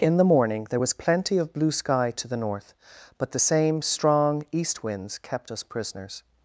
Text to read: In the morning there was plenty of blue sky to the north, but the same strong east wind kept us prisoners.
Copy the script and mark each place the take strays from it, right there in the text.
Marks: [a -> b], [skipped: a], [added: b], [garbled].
In the morning there was plenty of blue sky to the north, but the same strong east [wind -> winds] kept us prisoners.